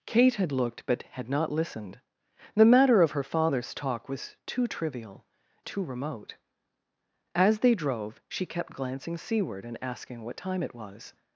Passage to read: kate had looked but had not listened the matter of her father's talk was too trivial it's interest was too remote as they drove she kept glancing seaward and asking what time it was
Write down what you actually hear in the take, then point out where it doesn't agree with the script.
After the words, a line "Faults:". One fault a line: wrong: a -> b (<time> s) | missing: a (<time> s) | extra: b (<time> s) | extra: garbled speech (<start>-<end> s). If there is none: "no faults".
kate had looked but had not listened the matter of her father's talk was too trivial too remote as they drove she kept glancing seaward and asking what time it was
Faults:
missing: it's interest was (5.2 s)